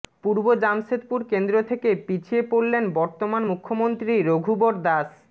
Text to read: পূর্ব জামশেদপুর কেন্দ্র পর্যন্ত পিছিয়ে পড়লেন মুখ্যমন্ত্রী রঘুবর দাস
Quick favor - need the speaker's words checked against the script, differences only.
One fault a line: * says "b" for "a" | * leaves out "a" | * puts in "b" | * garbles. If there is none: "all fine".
* says "থেকে" for "পর্যন্ত"
* puts in "বর্তমান"